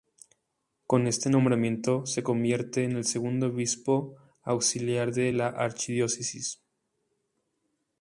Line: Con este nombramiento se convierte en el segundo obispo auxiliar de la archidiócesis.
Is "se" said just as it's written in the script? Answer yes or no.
yes